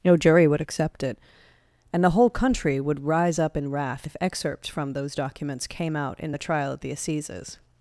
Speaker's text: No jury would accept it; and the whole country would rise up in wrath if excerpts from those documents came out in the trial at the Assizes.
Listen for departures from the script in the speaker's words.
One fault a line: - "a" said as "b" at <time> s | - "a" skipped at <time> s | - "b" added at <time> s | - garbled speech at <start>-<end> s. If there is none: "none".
none